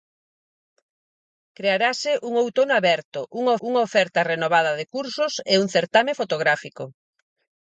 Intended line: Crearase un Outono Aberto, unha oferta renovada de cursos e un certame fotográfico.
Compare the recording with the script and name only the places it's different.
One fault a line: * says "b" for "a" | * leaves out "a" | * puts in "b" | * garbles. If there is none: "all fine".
* puts in "unha"